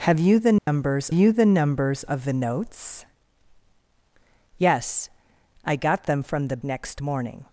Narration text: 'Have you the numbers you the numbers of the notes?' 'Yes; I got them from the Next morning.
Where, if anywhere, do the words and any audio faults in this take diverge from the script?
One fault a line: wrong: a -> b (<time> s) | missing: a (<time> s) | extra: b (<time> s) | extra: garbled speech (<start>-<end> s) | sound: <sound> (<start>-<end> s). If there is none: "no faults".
sound: dropout (0.6-0.7 s)